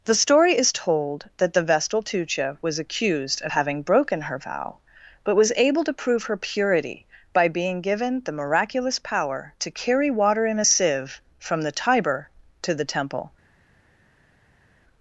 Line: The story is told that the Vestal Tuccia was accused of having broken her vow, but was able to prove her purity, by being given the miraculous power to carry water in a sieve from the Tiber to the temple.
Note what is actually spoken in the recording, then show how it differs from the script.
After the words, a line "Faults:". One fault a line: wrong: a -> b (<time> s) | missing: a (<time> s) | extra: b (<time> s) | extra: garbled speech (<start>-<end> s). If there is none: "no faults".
The story is told that the Vestal Tuccia was accused of having broken her vow, but was able to prove her purity, by being given the miraculous power to carry water in a sieve from the Tiber to the temple.
Faults:
no faults